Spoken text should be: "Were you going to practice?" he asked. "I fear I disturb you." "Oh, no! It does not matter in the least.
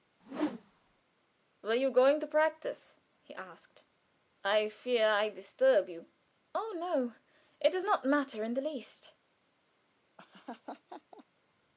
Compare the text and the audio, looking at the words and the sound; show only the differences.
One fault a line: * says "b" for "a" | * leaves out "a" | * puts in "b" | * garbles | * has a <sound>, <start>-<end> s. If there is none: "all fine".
* has a whoosh, 0.2-1.0 s
* has a laugh, 10.2-11.3 s